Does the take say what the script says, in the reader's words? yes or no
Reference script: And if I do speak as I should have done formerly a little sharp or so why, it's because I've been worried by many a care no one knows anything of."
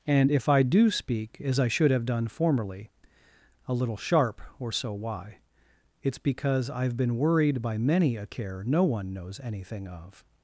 yes